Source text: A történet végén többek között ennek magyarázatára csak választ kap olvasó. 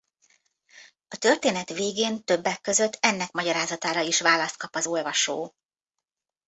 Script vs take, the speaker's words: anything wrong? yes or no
yes